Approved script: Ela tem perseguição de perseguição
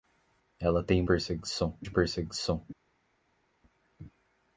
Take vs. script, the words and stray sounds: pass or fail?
pass